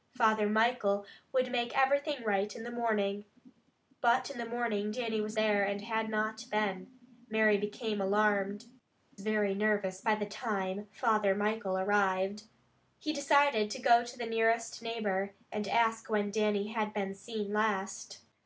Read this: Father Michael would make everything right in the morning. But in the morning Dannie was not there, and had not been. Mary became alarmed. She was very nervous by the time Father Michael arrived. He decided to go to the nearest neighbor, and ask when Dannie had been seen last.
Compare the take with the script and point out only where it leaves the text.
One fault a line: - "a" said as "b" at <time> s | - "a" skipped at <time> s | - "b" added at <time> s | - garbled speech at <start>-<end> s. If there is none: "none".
- "not" skipped at 5.4 s
- "She was" skipped at 8.7 s